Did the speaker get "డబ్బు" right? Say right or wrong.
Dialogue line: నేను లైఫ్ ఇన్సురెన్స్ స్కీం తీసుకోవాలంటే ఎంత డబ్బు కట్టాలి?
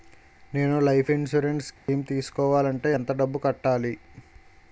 right